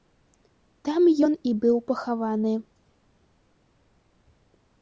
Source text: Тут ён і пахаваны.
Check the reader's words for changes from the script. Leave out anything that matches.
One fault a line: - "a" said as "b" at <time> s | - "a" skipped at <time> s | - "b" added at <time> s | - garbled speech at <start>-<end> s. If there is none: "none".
- "Тут" said as "Там" at 0.9 s
- "быў" added at 1.6 s